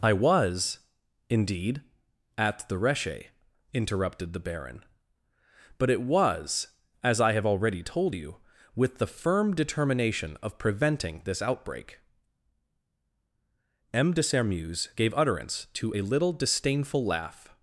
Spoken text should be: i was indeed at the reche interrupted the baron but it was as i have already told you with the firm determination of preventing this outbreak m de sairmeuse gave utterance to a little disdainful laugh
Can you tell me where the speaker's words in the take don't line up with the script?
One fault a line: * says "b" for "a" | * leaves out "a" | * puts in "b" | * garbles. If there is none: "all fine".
all fine